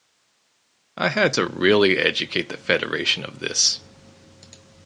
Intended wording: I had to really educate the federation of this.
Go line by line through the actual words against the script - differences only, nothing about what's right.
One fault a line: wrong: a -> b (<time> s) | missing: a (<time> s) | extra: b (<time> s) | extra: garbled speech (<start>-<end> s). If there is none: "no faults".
no faults